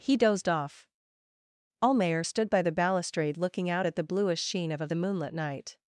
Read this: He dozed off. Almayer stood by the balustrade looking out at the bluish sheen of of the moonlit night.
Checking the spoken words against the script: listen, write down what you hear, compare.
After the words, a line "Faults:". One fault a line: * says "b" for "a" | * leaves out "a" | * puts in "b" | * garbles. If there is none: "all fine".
He dozed off. Almayer stood by the balustrade looking out at the bluish sheen of of the moonlit night.
Faults:
all fine